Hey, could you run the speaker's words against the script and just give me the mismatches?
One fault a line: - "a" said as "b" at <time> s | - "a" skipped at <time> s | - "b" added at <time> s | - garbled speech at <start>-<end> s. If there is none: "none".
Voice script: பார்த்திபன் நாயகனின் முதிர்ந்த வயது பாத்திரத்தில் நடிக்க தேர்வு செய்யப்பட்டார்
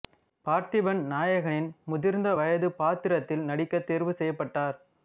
none